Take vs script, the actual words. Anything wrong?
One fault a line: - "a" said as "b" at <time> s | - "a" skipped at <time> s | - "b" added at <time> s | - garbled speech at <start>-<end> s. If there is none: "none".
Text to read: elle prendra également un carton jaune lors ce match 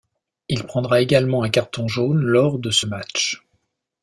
- "elle" said as "il" at 0.5 s
- "de" added at 2.6 s